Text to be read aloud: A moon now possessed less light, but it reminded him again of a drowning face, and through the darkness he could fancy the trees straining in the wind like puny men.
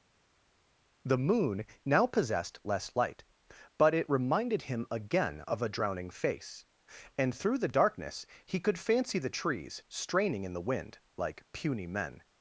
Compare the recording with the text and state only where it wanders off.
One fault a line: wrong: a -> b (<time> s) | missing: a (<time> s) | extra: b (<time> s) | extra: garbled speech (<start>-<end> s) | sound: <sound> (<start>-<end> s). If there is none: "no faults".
wrong: A -> The (1.1 s)